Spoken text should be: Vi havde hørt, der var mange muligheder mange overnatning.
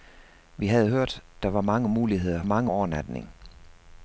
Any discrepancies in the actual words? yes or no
no